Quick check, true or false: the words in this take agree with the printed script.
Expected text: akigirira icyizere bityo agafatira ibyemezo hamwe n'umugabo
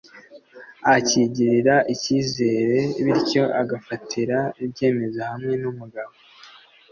true